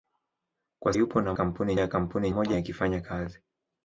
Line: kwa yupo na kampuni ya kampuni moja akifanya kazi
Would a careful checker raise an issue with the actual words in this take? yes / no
no